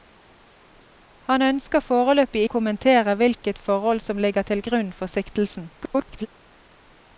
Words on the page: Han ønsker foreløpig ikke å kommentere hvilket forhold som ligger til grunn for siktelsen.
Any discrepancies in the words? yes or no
yes